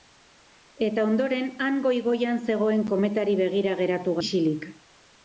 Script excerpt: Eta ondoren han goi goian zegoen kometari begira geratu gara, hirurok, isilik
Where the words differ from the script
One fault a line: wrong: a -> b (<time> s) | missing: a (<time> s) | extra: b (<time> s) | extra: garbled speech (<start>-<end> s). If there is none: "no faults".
missing: gara hirurok (4.2 s)